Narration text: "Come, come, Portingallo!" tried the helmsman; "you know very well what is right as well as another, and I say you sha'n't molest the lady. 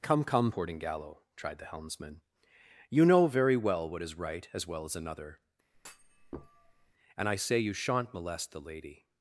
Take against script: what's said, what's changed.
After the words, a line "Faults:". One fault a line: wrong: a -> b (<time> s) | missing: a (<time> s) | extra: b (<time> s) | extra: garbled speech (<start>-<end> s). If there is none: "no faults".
"Come, come, Portingallo!" tried the helmsman; "you know very well what is right as well as another, and I say you sha'n't molest the lady.
Faults:
no faults